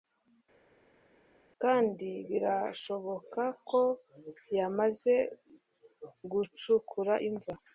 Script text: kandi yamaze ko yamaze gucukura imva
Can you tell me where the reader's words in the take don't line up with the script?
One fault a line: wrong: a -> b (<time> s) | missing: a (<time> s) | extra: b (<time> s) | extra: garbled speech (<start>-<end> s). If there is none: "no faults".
wrong: yamaze -> birashoboka (2.3 s)